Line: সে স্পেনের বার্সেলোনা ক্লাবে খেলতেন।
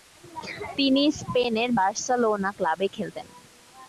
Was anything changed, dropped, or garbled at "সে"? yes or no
yes